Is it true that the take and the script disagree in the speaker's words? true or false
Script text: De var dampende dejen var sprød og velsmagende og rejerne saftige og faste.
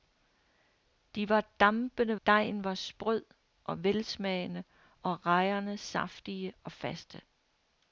false